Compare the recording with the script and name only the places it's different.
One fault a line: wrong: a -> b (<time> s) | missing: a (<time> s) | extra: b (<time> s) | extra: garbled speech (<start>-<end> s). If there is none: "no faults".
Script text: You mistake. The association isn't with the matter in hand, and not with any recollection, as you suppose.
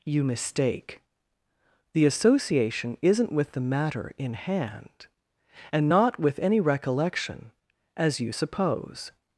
no faults